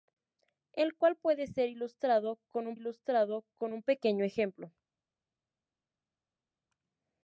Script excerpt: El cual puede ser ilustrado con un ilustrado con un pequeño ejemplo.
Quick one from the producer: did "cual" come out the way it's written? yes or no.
yes